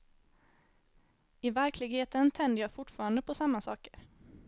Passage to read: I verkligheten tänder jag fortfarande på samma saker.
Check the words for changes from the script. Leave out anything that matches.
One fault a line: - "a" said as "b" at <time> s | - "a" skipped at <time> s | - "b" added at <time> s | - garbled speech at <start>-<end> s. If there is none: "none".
none